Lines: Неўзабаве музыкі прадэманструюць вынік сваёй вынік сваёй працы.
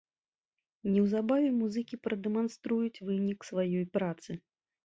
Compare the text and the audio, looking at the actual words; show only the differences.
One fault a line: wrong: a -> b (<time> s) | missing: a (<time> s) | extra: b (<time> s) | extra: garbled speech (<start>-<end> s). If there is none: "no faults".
missing: вынік сваёй (3.9 s)